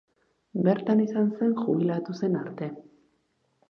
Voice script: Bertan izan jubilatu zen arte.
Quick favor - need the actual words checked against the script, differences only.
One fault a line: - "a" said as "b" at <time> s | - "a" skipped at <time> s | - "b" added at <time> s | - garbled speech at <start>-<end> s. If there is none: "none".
- "zen" added at 1.4 s